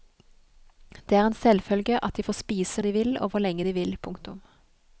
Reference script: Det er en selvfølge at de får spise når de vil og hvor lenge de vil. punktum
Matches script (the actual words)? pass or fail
fail